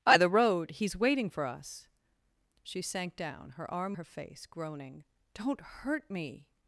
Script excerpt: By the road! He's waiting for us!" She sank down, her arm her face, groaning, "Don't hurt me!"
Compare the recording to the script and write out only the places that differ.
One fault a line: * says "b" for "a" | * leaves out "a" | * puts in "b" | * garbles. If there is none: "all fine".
all fine